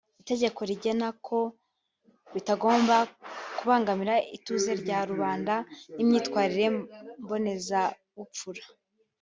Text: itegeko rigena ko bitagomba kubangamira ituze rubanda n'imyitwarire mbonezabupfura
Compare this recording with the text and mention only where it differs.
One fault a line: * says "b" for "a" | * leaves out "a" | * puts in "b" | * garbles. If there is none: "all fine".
* puts in "rya"